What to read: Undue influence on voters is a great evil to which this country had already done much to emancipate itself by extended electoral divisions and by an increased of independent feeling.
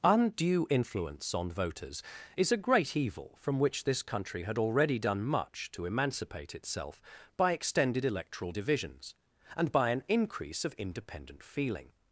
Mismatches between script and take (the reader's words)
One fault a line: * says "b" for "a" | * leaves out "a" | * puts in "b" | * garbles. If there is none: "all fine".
* says "from" for "to"
* says "increase" for "increased"